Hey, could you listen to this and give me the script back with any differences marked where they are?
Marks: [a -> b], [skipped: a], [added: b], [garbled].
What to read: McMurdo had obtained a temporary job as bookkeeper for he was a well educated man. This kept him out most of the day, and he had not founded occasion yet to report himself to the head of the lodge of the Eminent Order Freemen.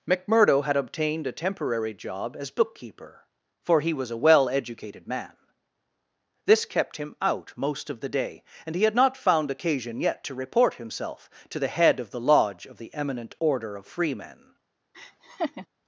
McMurdo had obtained a temporary job as bookkeeper for he was a well educated man. This kept him out most of the day, and he had not [founded -> found] occasion yet to report himself to the head of the lodge of the Eminent Order [added: of] Freemen.